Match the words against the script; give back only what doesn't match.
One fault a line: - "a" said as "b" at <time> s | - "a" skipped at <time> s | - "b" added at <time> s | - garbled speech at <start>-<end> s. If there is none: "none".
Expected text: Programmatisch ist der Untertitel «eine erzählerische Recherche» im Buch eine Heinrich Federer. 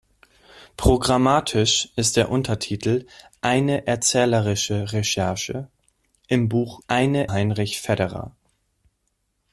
none